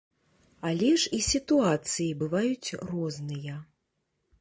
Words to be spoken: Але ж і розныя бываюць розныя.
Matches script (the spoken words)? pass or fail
fail